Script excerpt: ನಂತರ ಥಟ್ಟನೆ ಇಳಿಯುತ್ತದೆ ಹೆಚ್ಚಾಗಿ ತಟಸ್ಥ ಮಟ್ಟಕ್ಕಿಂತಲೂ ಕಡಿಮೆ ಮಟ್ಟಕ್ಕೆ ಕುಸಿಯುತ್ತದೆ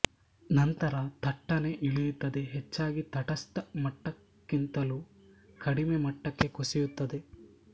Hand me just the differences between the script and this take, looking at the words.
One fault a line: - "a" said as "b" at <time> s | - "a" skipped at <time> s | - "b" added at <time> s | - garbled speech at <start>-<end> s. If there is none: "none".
none